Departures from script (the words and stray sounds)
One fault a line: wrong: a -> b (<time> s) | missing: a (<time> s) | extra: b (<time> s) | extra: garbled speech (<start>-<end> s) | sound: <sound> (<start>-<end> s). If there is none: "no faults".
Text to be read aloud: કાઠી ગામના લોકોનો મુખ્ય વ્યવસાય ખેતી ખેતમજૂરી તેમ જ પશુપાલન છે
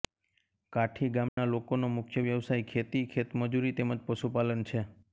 sound: dropout (1.3-1.4 s)